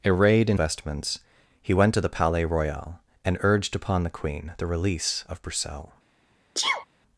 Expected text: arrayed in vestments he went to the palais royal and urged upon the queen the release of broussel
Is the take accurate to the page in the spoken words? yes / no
yes